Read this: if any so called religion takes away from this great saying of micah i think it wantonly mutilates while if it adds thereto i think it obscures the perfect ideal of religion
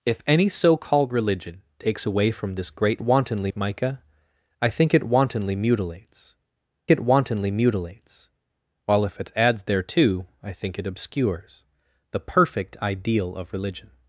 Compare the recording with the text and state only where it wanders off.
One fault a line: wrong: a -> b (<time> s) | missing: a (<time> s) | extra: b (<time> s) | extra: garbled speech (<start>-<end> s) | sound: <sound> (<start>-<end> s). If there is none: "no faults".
wrong: saying -> wantonly (3.0 s)
extra: it wantonly mutilates (6.9 s)